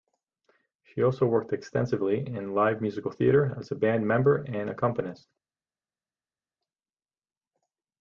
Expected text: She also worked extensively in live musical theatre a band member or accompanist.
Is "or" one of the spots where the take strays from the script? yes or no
yes